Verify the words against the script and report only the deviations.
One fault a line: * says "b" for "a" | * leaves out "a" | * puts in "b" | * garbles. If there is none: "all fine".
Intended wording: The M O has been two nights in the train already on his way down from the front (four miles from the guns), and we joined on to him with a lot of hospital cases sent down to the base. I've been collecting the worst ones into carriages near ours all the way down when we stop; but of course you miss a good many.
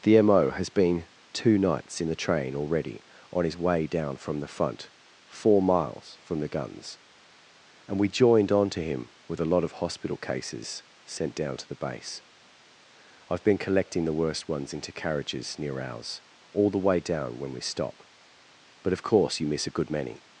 all fine